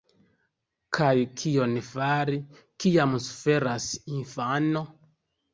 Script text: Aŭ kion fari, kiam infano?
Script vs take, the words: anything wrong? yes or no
yes